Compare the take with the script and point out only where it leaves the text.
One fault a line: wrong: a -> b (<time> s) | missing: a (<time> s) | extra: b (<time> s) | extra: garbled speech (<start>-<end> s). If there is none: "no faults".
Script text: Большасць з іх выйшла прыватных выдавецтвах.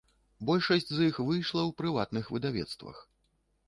extra: ў (1.7 s)